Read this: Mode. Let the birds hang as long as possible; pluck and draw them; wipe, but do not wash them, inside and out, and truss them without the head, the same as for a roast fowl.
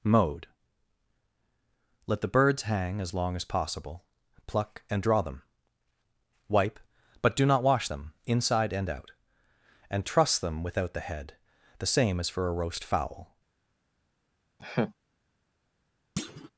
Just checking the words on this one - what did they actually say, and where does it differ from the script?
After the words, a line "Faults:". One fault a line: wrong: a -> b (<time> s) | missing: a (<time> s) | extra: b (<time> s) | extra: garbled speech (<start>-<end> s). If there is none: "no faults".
Mode. Let the birds hang as long as possible; pluck and draw them; wipe, but do not wash them, inside and out, and truss them without the head, the same as for a roast fowl.
Faults:
no faults